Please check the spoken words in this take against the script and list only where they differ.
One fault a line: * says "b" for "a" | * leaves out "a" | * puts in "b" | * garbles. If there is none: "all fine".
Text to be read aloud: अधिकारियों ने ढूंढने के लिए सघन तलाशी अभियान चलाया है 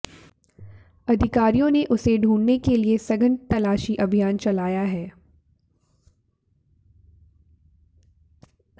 * puts in "उसे"